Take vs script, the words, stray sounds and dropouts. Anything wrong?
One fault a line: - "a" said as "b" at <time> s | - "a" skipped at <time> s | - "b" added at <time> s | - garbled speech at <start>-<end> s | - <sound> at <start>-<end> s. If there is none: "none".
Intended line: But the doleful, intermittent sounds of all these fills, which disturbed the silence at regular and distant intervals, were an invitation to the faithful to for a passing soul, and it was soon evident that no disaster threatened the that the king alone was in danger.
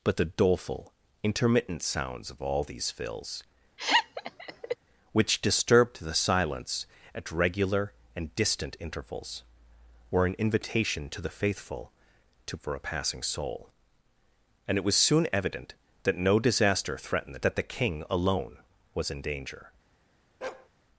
- laugh at 3.8-4.8 s
- bark at 20.4-20.7 s